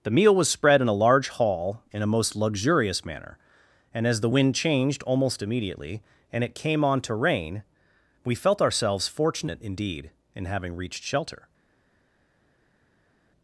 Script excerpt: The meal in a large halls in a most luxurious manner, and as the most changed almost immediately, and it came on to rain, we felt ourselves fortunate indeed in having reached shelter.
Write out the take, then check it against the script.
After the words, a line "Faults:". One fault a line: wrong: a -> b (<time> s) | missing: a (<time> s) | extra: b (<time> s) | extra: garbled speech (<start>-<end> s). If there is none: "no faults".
The meal was spread in a large hall in a most luxurious manner, and as the wind changed almost immediately, and it came on to rain, we felt ourselves fortunate indeed in having reached shelter.
Faults:
extra: was spread (0.3 s)
wrong: halls -> hall (1.3 s)
wrong: most -> wind (4.3 s)